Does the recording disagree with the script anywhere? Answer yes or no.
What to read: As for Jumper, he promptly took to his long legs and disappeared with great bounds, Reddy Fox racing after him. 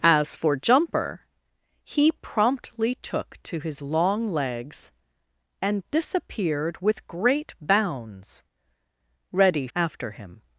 yes